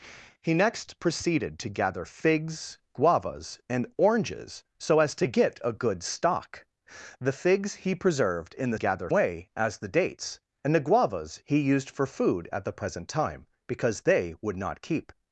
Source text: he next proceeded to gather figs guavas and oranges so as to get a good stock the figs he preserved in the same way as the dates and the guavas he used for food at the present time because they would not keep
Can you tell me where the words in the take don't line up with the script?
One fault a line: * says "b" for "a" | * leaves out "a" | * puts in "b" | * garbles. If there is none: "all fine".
* says "gather" for "same"